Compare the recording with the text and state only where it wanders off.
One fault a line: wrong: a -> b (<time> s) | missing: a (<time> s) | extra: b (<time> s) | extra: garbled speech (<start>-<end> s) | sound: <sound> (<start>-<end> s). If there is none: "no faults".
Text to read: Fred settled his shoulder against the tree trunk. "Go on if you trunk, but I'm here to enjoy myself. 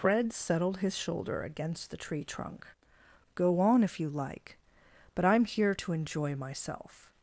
wrong: trunk -> like (4.1 s)